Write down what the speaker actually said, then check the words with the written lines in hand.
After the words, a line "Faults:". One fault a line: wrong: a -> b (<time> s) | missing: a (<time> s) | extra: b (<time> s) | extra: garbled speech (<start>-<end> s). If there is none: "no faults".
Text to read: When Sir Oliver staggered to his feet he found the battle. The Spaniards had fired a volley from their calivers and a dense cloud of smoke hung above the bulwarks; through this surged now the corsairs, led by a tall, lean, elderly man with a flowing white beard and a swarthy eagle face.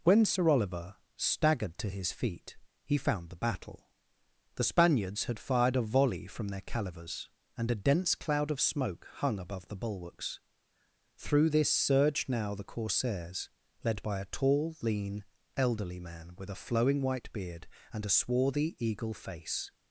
When Sir Oliver staggered to his feet he found the battle. The Spaniards had fired a volley from their calivers and a dense cloud of smoke hung above the bulwarks; through this surged now the corsairs, led by a tall, lean, elderly man with a flowing white beard and a swarthy eagle face.
Faults:
no faults